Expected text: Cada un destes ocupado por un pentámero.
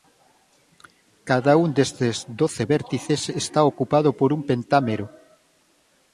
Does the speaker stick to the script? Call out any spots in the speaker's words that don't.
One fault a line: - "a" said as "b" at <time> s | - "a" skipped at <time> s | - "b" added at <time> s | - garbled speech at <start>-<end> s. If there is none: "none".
- "doce vértices está" added at 2.4 s